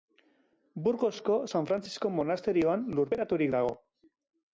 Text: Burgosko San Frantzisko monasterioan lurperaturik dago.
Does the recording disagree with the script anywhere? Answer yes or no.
no